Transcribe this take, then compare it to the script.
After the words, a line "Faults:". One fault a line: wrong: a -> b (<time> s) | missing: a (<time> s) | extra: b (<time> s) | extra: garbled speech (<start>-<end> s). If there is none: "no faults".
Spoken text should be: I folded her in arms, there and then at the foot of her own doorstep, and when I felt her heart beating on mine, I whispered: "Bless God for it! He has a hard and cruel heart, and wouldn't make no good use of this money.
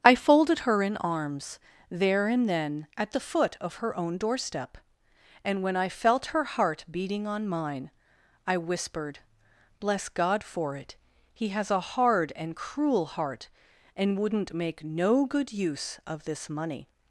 I folded her in arms, there and then at the foot of her own doorstep, and when I felt her heart beating on mine, I whispered: "Bless God for it! He has a hard and cruel heart, and wouldn't make no good use of this money.
Faults:
no faults